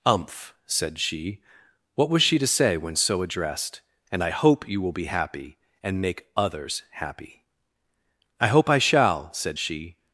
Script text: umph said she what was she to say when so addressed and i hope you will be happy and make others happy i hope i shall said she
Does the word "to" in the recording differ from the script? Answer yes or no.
no